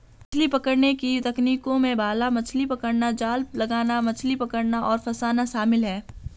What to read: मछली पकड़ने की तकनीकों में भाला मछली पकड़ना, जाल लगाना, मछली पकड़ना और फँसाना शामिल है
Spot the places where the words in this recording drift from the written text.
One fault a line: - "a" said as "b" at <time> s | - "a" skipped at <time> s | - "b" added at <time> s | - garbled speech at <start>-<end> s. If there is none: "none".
none